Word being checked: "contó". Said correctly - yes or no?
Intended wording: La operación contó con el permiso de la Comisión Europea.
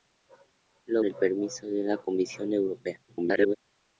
no